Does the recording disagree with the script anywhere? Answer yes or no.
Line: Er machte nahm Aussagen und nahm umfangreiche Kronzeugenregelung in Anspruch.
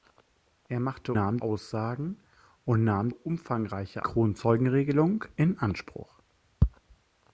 no